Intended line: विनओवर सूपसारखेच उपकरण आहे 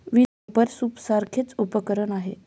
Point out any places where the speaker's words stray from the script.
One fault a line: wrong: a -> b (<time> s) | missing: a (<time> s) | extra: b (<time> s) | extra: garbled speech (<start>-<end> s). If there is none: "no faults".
no faults